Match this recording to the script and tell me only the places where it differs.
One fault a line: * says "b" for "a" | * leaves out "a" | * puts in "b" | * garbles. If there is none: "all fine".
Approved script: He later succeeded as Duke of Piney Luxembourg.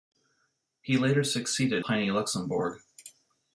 * leaves out "as Duke of"